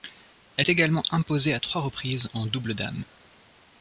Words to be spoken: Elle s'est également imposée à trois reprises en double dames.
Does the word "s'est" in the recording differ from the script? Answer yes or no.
yes